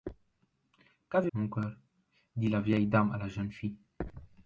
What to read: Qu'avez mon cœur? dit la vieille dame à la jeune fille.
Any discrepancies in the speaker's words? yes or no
no